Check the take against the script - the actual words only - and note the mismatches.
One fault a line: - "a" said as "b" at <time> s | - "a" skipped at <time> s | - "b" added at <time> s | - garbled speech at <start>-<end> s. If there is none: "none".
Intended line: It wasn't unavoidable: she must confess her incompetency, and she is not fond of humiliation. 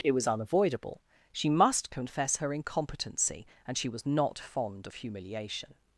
- "wasn't" said as "was" at 0.1 s
- "is" said as "was" at 3.9 s